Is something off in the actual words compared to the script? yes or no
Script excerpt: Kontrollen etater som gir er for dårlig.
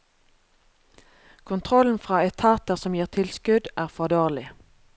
yes